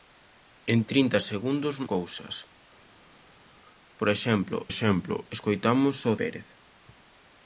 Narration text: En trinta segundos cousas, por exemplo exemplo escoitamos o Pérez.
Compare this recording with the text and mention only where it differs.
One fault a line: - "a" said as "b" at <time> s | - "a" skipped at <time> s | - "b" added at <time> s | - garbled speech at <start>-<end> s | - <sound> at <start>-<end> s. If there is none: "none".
none